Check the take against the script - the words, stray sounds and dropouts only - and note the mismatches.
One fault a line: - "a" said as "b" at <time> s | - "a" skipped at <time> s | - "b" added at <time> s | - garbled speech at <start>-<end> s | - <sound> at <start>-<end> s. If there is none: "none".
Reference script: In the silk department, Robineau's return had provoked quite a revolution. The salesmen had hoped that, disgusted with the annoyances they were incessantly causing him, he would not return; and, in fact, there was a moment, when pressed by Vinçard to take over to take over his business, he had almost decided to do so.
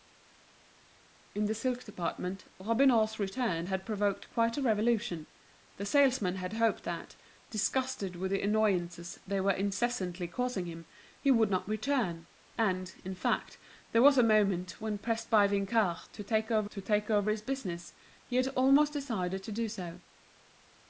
none